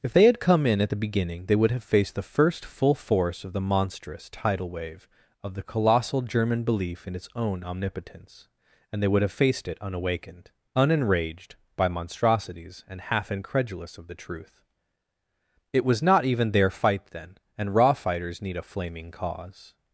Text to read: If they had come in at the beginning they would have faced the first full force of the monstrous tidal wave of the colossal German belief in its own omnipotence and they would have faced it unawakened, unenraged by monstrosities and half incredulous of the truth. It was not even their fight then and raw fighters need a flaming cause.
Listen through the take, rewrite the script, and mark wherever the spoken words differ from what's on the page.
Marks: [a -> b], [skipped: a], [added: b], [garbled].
If they had come in at the beginning they would have faced the first full force of the monstrous tidal wave of the colossal German belief in its own omnipotence and they would have faced it unawakened, unenraged by monstrosities and half incredulous of the truth. It was not even their fight then and raw fighters need a flaming cause.